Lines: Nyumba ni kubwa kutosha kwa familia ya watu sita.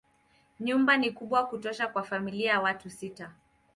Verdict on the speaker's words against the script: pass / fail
pass